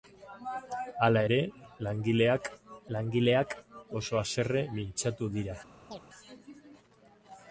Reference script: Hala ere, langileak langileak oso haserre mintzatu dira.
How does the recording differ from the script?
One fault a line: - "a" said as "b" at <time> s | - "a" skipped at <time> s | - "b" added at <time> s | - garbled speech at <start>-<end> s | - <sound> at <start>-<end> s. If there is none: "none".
- chirp at 5.9-6.0 s